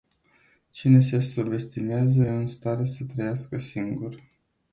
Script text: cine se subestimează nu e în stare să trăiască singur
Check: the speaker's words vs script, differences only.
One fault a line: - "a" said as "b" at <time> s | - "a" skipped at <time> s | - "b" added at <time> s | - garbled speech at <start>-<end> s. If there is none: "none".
- "nu" skipped at 2.2 s